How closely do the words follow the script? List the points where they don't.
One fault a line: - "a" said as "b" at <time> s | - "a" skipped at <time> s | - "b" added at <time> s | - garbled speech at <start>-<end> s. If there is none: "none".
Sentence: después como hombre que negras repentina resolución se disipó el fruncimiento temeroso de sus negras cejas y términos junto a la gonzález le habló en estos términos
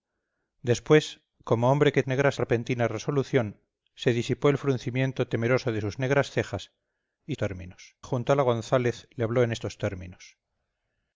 none